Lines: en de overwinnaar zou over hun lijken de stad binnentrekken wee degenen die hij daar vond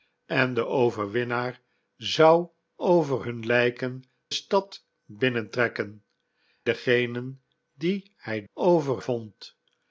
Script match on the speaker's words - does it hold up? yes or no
no